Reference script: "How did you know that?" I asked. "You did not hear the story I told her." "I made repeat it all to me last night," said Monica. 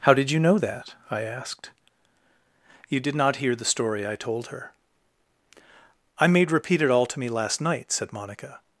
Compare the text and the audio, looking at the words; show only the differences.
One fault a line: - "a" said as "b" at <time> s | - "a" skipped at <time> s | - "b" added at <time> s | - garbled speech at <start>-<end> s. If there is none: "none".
none